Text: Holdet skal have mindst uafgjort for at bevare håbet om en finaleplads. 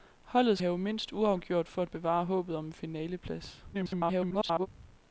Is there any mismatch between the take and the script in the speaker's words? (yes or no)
yes